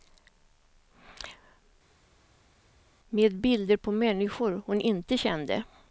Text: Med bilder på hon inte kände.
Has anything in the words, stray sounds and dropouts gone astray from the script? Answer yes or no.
yes